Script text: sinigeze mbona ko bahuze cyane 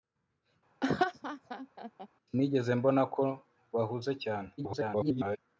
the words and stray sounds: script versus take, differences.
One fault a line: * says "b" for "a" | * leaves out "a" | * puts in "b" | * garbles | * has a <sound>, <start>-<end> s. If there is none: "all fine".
* has a laugh, 0.8-2.1 s
* garbles